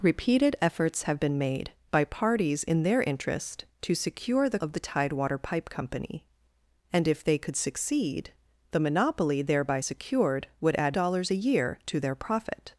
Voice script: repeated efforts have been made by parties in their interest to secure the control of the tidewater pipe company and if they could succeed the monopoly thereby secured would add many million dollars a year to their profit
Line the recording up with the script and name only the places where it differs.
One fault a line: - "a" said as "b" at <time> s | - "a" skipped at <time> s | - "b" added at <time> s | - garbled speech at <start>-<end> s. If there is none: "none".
- "control" skipped at 4.6 s
- "many million" skipped at 11.0 s